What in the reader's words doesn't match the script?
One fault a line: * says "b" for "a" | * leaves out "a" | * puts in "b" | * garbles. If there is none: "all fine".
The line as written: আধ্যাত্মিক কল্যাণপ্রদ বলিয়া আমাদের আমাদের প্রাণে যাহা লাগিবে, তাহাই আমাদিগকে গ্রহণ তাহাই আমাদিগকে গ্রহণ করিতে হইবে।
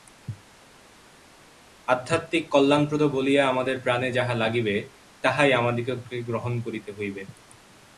* leaves out "আমাদের"
* leaves out "তাহাই আমাদিগকে গ্রহণ"